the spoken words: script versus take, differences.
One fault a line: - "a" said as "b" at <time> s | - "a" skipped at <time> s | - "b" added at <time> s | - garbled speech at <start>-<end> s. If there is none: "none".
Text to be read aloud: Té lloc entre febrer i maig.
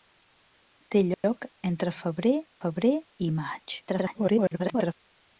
- "febrer" added at 2.6 s
- garbled speech at 3.9-4.9 s